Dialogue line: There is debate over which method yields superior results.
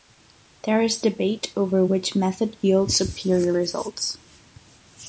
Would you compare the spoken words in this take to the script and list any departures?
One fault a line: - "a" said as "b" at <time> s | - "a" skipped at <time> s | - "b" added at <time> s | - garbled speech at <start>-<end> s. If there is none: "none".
none